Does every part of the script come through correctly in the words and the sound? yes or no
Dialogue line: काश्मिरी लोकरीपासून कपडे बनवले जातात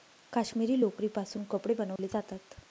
no